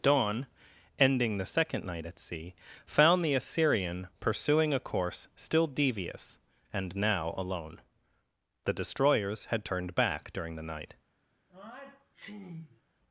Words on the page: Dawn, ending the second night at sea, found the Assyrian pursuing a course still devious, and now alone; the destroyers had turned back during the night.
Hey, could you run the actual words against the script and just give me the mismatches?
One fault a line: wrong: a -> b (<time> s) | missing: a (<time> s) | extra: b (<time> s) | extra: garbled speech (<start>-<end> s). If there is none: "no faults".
no faults